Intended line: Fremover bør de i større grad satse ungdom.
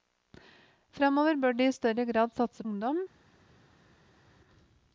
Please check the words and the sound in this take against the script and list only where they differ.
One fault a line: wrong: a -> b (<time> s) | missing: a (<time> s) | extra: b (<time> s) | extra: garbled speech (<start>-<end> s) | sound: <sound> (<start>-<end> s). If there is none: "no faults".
no faults